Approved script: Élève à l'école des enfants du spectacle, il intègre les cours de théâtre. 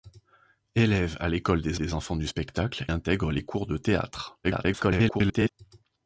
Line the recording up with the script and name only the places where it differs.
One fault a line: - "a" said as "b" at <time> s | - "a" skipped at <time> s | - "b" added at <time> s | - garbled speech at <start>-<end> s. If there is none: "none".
- "des" added at 1.8 s
- "il" skipped at 2.9 s
- garbled speech at 4.4-5.5 s